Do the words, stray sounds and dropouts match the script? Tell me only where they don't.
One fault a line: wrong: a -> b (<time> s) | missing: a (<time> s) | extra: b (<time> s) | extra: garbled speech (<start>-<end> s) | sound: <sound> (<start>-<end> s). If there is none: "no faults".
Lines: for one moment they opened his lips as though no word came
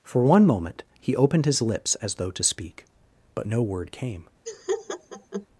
wrong: they -> he (1.0 s)
extra: to speak but (2.3 s)
sound: laugh (4.5-5.5 s)